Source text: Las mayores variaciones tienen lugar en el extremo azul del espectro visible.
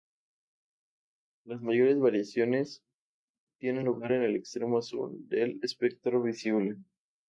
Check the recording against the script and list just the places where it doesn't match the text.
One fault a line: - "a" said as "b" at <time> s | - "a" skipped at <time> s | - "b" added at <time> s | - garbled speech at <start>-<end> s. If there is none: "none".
none